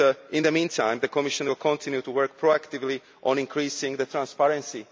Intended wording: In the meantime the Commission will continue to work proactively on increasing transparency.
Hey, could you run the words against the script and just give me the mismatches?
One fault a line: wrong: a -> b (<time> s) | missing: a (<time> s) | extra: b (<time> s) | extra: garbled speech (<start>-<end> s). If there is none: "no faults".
no faults